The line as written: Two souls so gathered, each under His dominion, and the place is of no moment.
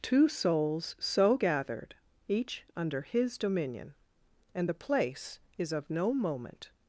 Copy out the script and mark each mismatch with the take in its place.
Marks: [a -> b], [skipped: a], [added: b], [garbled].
Two souls so gathered, each under His dominion, and the place is of no moment.